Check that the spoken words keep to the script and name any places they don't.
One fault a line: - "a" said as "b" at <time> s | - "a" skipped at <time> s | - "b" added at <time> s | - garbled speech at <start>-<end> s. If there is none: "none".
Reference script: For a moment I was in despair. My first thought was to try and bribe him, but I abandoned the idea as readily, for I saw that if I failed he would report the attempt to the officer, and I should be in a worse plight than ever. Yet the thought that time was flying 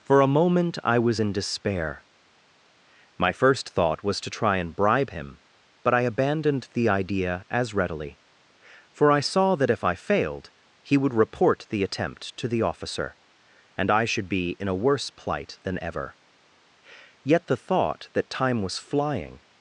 none